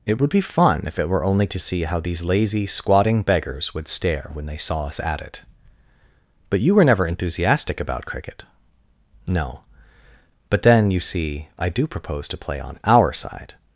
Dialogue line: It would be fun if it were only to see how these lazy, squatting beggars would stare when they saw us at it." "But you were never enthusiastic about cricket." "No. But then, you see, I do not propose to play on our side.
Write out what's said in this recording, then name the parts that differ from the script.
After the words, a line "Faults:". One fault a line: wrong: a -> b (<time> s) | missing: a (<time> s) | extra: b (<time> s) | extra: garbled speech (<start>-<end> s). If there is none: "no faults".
It would be fun if it were only to see how these lazy, squatting beggars would stare when they saw us at it." "But you were never enthusiastic about cricket." "No. But then, you see, I do propose to play on our side.
Faults:
missing: not (11.9 s)